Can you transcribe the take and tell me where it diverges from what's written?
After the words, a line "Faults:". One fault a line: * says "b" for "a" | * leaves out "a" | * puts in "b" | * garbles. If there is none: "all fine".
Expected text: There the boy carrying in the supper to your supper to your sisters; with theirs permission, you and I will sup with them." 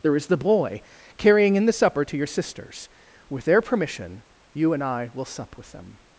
There is the boy carrying in the supper to your sisters; with their permission, you and I will sup with them."
Faults:
* puts in "is"
* leaves out "supper to your"
* says "their" for "theirs"